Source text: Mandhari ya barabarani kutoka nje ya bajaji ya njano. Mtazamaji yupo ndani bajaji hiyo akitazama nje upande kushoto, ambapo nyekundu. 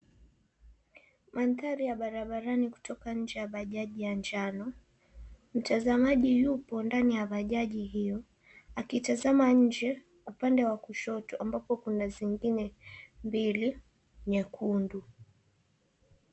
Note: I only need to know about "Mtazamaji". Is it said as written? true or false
true